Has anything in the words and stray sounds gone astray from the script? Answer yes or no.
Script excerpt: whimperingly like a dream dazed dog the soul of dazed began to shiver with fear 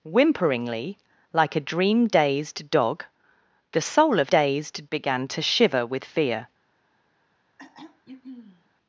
yes